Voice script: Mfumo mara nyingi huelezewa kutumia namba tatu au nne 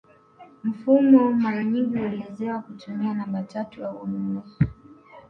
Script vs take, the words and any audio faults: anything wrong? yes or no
no